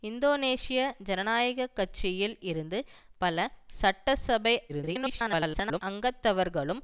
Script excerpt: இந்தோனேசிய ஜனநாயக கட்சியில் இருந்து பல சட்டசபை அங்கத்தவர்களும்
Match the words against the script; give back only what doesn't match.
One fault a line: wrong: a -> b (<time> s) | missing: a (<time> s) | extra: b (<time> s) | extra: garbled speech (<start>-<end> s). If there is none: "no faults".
extra: garbled speech (4.7-5.8 s)